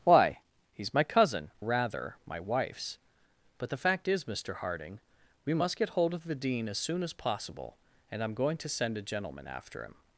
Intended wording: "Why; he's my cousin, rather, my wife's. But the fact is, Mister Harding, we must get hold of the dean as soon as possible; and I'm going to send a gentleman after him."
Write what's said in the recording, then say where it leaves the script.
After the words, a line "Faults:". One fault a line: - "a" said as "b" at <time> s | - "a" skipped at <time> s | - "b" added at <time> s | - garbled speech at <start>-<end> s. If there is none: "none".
"Why; he's my cousin, rather, my wife's. But the fact is, Mister Harding, we must get hold of the dean as soon as possible; and I'm going to send a gentleman after him."
Faults:
none